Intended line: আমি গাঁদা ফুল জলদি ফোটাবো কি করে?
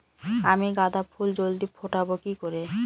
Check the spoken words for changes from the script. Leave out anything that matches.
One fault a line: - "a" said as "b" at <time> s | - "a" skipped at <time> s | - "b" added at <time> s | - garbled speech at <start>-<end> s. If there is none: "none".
none